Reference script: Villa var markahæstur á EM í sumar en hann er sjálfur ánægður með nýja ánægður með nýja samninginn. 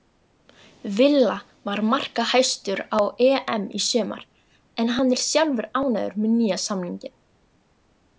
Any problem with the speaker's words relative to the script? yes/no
yes